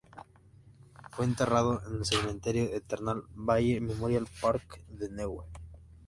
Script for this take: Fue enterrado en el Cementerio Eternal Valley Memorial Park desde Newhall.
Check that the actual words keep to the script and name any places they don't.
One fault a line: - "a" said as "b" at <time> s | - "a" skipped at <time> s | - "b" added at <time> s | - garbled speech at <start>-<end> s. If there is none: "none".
- "desde" said as "de" at 4.8 s